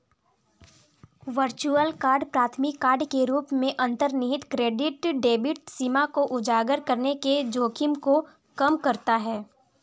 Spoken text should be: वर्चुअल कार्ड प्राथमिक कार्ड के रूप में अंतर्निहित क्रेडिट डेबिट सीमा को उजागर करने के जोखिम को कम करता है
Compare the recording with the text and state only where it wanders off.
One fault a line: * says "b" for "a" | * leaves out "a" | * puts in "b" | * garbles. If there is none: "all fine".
all fine